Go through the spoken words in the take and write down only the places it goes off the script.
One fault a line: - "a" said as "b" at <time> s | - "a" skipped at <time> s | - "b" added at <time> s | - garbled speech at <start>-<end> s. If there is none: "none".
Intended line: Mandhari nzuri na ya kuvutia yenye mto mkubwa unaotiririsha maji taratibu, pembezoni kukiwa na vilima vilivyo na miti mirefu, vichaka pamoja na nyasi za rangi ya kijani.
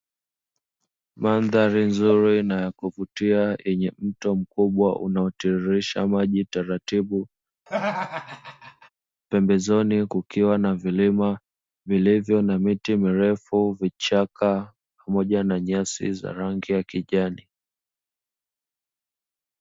none